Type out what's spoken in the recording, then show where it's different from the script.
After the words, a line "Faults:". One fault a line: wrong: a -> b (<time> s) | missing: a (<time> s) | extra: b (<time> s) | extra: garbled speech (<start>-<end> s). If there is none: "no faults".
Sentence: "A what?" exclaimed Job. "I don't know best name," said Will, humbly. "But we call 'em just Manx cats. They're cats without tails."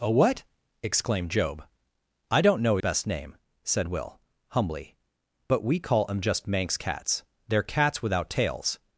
"A what?" exclaimed Job. "I don't know best name," said Will, humbly. "But we call 'em just Manx cats. They're cats without tails."
Faults:
no faults